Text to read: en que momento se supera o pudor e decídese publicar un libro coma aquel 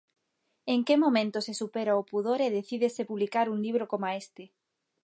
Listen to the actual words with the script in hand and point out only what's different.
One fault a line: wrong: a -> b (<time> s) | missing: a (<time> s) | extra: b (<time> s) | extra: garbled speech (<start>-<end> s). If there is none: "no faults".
wrong: aquel -> este (4.2 s)